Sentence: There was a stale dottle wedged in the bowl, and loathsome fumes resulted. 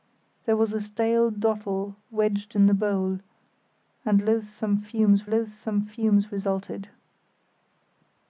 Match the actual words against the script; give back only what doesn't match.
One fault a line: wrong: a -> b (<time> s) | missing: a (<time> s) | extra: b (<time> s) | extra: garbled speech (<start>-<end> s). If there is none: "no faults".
extra: loathsome fumes (5.3 s)